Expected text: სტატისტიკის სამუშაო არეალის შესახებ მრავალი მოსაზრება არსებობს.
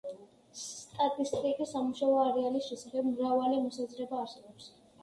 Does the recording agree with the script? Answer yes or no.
yes